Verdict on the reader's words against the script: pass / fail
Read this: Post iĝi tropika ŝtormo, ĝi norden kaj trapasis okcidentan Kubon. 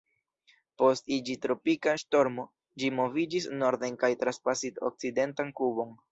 fail